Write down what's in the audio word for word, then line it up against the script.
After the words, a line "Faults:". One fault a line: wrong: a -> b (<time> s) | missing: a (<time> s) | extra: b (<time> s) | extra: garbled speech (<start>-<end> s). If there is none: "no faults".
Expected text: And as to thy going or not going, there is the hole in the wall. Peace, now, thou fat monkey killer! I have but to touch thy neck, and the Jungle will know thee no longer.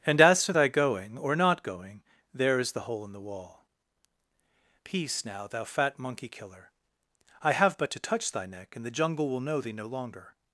And as to thy going or not going, there is the hole in the wall. Peace, now, thou fat monkey killer! I have but to touch thy neck, and the Jungle will know thee no longer.
Faults:
no faults